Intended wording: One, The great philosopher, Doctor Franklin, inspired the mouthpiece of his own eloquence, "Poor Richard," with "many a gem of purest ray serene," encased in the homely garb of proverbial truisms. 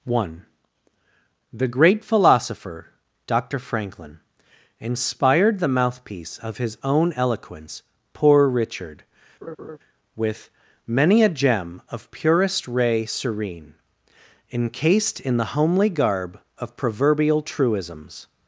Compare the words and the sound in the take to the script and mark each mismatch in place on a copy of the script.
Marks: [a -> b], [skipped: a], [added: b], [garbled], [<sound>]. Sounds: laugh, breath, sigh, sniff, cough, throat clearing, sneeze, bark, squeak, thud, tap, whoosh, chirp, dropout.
One, The great philosopher, Doctor Franklin, inspired the mouthpiece of his own eloquence, "Poor Richard," [laugh] with "many a gem of purest ray serene," encased in the homely garb of proverbial truisms.